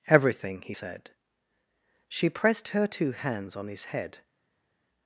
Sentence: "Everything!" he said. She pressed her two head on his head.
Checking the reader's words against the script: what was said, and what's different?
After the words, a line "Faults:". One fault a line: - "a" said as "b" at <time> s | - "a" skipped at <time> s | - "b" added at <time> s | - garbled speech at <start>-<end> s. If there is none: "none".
"Everything!" he said. She pressed her two hands on his head.
Faults:
- "head" said as "hands" at 3.1 s